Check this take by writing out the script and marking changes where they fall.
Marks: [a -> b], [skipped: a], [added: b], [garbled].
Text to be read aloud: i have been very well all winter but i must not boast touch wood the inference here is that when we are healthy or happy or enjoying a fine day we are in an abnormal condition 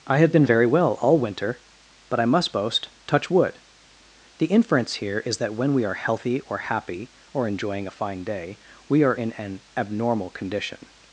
i have been very well all winter but i must [skipped: not] boast touch wood the inference here is that when we are healthy or happy or enjoying a fine day we are in an abnormal condition